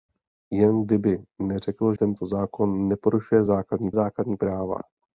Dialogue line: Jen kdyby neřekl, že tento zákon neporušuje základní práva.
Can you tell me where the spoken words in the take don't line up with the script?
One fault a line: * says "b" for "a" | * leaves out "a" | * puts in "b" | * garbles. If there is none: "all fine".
* leaves out "že"
* puts in "základní"